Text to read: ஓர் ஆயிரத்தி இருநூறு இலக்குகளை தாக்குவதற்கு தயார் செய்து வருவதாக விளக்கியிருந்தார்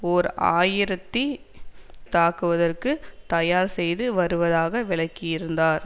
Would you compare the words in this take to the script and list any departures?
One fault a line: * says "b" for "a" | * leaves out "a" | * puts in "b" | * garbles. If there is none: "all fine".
* leaves out "இருநூறு இலக்குகளை"